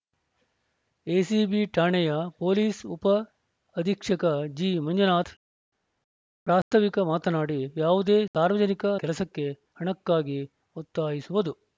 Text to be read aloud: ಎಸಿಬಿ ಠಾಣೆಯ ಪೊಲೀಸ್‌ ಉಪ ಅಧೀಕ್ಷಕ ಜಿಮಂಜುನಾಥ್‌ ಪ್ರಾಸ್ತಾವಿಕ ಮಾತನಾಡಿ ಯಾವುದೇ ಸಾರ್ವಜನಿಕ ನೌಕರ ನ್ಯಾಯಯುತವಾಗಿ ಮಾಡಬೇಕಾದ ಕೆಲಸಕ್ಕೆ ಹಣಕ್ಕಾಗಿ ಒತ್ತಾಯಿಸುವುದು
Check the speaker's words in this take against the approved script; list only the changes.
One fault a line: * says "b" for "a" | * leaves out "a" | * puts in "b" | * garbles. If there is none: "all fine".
* leaves out "ನೌಕರ ನ್ಯಾಯಯುತವಾಗಿ ಮಾಡಬೇಕಾದ"